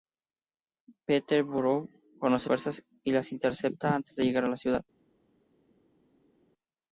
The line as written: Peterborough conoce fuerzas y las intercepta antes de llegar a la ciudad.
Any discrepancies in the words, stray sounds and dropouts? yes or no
no